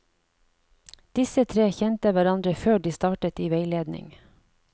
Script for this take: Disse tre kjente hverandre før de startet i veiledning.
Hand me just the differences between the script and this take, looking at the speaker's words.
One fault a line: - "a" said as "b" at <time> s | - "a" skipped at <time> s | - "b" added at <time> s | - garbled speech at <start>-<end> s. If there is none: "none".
none